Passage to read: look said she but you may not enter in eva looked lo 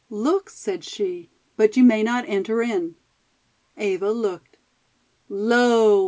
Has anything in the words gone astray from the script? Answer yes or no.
no